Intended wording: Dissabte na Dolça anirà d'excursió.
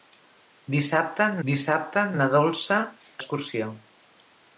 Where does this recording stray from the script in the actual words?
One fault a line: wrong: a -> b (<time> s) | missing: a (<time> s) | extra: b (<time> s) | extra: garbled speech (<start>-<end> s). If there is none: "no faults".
extra: dissabte (1.5 s)
missing: anirà (2.8 s)